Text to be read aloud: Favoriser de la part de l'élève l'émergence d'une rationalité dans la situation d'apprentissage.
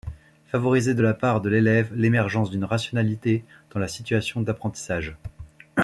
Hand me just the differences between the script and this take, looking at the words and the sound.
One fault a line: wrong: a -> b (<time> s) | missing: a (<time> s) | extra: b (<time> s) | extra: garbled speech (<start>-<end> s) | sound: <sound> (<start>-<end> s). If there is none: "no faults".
no faults